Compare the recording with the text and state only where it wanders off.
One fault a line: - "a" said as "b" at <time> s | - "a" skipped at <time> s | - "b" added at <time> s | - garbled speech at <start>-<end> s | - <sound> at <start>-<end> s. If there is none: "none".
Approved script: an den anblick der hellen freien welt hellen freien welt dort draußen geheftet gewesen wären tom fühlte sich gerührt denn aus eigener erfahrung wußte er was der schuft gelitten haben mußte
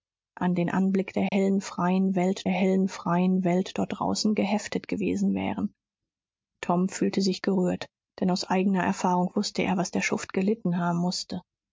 - dropout at 1.3-1.3 s